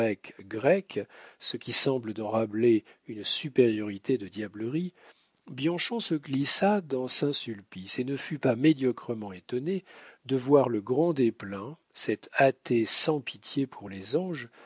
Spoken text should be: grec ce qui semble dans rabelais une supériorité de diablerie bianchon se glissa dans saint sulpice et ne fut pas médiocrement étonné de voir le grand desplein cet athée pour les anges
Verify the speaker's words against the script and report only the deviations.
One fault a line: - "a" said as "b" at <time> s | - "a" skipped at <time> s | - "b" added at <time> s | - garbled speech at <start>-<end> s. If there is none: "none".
- "sans pitié" added at 12.9 s